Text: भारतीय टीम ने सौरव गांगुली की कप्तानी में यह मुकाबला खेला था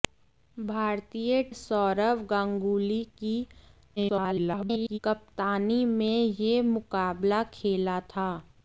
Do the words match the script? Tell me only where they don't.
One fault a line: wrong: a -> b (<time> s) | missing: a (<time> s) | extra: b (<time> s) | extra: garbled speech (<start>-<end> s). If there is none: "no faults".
missing: टीम ने (1.4 s)
extra: garbled speech (4.0-5.0 s)